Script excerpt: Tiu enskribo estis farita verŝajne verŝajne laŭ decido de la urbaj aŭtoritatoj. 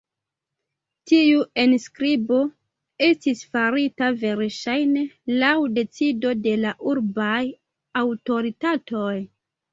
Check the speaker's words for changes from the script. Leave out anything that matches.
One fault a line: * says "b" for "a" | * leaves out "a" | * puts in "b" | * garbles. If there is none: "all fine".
* leaves out "verŝajne"